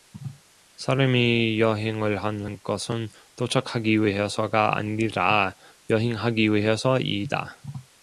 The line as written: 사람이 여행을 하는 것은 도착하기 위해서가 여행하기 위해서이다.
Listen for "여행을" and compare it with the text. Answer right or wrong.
right